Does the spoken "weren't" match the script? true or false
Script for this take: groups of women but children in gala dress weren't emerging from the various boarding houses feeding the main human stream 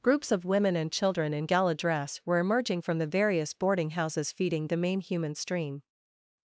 false